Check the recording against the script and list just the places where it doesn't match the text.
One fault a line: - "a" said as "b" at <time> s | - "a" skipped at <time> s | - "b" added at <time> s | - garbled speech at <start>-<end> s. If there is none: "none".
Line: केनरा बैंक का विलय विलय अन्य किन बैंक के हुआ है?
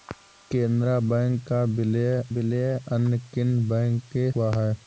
none